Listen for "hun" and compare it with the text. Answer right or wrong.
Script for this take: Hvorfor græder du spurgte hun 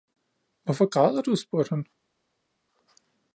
wrong